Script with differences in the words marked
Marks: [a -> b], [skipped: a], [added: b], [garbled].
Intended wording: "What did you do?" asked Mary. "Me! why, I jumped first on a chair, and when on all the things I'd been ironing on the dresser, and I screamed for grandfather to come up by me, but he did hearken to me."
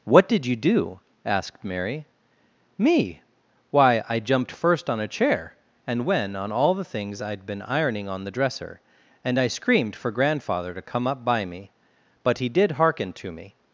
"What did you do?" asked Mary. "Me! why, I jumped first on a chair, and when on all the things I'd been ironing on the dresser, and I screamed for grandfather to come up by me, but he did hearken to me."